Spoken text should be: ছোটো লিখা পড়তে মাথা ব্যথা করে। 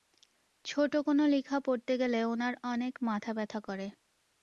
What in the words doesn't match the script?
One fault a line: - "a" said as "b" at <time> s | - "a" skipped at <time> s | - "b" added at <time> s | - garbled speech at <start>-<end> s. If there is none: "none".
- "কোনো" added at 1.0 s
- "গেলে ওনার অনেক" added at 2.0 s